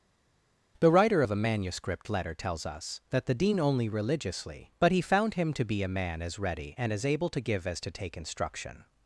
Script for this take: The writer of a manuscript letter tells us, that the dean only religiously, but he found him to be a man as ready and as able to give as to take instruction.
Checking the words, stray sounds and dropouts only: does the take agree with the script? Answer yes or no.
yes